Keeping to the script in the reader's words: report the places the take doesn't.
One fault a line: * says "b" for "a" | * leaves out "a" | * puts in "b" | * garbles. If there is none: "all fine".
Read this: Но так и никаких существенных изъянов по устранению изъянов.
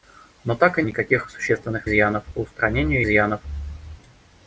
all fine